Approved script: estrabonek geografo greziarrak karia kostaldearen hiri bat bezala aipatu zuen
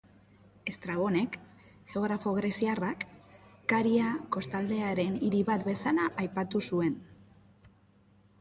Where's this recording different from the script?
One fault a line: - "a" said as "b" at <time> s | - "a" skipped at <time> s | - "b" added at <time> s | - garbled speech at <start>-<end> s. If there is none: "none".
none